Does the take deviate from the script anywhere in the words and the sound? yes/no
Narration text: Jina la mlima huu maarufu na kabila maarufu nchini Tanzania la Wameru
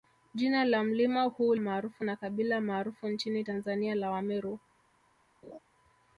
yes